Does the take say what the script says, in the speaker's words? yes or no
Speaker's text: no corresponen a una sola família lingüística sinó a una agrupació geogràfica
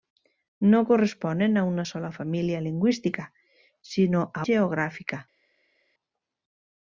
no